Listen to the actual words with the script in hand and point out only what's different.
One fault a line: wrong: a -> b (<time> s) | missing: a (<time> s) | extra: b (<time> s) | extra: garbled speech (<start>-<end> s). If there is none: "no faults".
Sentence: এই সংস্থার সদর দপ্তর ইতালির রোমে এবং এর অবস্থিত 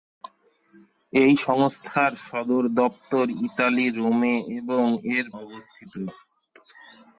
no faults